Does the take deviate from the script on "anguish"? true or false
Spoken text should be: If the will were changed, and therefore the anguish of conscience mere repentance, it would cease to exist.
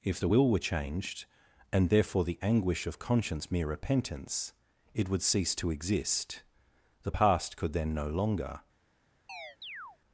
false